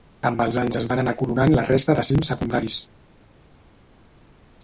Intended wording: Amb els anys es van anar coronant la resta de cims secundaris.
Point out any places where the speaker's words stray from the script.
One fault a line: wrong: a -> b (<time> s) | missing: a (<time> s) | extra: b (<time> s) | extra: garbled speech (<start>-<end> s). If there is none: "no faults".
no faults